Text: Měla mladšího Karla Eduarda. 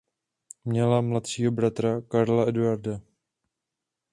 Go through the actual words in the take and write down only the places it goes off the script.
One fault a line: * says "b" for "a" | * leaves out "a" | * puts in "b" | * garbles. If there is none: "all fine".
* puts in "bratra"